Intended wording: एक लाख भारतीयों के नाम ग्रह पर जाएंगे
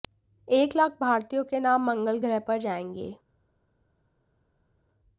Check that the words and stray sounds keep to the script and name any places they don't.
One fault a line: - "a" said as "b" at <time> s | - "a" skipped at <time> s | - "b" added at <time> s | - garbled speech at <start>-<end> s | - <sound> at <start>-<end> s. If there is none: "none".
- "मंगल" added at 1.9 s